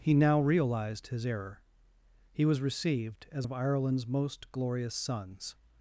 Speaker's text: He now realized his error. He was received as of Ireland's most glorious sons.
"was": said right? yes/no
yes